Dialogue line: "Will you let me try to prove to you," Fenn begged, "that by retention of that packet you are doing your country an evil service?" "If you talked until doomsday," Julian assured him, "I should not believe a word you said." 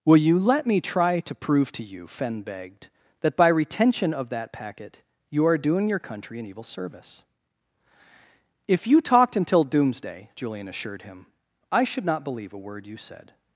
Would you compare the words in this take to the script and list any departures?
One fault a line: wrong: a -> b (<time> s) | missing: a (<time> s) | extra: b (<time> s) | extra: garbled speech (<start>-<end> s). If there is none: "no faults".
no faults